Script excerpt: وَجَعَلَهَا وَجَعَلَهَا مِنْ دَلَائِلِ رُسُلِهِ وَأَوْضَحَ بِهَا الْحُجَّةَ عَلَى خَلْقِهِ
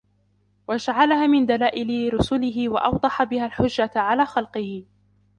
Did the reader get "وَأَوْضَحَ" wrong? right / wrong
right